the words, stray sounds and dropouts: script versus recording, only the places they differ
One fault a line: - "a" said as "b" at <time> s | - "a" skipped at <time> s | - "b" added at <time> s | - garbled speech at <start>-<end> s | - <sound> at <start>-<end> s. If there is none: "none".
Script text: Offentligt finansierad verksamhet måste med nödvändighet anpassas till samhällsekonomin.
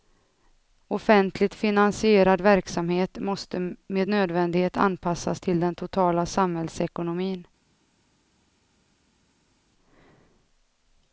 - "den totala" added at 5.6 s